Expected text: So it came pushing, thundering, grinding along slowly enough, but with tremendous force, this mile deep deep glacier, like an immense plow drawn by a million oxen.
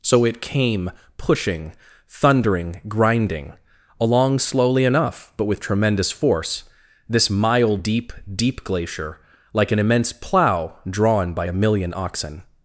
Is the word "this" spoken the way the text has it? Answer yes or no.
yes